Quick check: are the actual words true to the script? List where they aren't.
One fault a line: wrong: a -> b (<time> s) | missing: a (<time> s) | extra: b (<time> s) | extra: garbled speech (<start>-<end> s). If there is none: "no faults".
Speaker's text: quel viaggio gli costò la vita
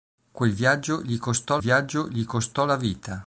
extra: viaggio gli costò (1.6 s)